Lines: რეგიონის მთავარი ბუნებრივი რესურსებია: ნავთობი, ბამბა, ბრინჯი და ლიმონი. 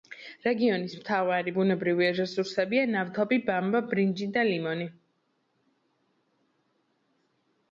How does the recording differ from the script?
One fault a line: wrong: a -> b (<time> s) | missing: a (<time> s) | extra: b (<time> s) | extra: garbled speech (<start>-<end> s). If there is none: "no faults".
no faults